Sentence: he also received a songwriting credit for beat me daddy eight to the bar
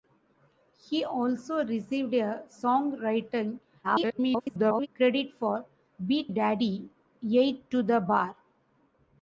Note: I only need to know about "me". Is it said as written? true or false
false